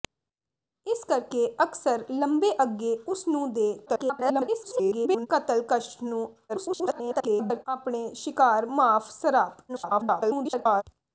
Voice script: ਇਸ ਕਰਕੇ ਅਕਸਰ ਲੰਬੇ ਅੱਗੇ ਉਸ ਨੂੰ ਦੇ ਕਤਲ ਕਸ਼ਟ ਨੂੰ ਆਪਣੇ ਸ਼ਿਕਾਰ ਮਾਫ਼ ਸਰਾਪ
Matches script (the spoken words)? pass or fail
fail